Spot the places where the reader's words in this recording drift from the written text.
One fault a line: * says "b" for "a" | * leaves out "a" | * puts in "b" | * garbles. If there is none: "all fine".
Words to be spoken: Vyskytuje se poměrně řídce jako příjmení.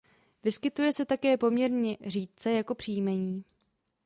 * puts in "také"